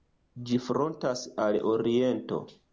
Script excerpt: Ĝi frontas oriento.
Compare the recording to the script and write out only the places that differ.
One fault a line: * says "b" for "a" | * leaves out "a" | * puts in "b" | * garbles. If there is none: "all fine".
* puts in "al"